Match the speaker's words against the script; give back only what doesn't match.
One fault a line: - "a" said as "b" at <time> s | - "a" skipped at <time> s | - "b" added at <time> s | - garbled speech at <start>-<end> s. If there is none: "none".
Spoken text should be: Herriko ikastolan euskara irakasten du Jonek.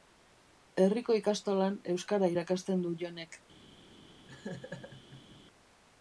none